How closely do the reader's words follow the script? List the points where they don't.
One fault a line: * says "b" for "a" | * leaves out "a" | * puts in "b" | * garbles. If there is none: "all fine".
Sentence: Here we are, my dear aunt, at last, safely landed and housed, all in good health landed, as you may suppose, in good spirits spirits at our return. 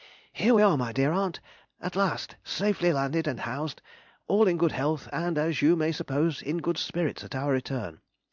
* says "and" for "landed"
* leaves out "spirits"